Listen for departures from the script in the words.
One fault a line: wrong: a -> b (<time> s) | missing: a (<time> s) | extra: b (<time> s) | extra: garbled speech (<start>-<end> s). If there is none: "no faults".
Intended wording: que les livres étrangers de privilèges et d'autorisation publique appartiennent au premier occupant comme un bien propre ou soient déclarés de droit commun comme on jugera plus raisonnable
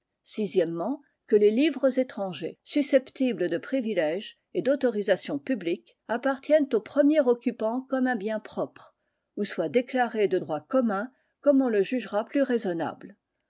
extra: susceptibles (2.6 s)
extra: le (11.7 s)